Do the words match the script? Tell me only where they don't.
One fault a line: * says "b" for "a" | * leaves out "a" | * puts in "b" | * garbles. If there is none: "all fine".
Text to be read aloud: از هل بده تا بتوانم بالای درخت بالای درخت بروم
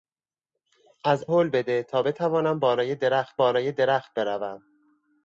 all fine